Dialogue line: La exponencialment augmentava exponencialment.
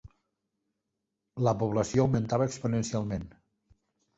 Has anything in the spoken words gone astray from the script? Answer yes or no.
yes